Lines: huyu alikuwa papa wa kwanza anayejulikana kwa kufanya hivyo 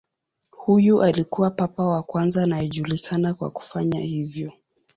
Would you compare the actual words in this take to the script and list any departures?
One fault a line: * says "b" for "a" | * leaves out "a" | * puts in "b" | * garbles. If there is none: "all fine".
all fine